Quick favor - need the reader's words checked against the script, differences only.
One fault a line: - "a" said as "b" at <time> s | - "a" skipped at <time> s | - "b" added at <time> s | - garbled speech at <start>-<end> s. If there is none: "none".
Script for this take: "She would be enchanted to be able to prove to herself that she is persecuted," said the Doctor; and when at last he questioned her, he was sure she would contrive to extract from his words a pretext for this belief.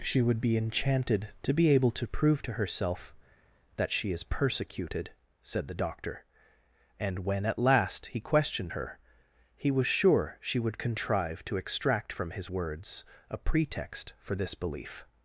none